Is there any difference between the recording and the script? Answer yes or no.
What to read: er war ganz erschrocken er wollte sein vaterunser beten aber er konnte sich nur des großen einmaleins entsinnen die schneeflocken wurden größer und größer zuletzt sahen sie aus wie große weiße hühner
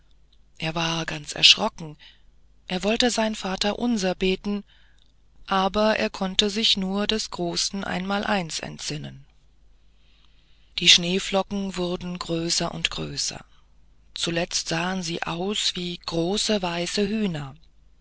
no